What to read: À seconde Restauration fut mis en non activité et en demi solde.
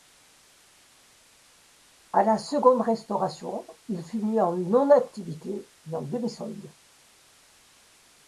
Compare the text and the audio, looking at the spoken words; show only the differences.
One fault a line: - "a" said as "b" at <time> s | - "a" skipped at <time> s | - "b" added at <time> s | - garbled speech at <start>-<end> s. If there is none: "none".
- "la" added at 2.2 s
- "il" added at 3.9 s